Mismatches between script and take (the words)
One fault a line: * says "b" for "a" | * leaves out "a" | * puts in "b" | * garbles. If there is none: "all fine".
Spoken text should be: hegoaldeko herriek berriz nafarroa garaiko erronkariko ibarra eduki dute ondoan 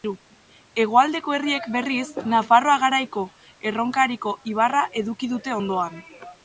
all fine